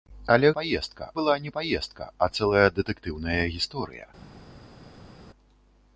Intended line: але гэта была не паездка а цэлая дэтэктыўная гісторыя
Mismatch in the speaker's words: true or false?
true